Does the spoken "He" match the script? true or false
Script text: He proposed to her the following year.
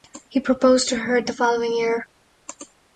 true